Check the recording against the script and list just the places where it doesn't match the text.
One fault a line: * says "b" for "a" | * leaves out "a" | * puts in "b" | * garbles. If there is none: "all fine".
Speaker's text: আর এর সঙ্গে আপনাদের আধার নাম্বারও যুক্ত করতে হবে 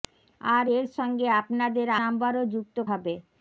* leaves out "আধার"
* leaves out "করতে"